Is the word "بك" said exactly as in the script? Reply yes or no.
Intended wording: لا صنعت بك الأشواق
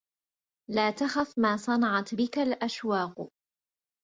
yes